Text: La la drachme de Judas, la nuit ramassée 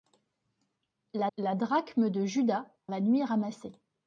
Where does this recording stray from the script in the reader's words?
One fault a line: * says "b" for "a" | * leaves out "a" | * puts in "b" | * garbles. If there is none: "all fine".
all fine